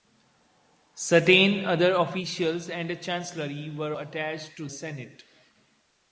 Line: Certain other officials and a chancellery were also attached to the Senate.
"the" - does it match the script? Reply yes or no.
no